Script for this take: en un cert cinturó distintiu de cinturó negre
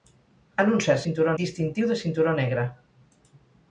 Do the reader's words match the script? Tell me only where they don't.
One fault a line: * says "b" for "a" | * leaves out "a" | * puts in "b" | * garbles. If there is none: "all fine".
all fine